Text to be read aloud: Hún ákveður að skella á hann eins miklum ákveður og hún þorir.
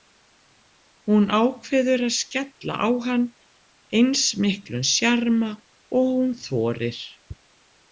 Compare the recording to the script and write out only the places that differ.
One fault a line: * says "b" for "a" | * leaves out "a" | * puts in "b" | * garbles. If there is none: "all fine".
* says "sjarma" for "ákveður"